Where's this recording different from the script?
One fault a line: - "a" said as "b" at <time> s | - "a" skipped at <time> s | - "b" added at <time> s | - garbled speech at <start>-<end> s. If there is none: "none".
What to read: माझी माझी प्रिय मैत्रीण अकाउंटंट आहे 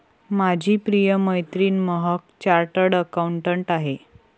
- "माझी" skipped at 0.8 s
- "महक चार्टर्ड" added at 1.8 s